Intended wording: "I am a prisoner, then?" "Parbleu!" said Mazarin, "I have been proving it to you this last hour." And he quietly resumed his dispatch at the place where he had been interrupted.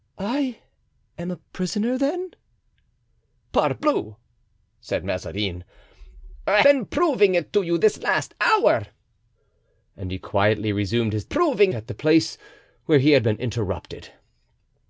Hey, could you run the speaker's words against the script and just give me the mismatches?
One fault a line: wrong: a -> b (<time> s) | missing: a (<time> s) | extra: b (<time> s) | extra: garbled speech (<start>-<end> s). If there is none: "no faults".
missing: have (6.6 s)
wrong: dispatch -> proving (11.2 s)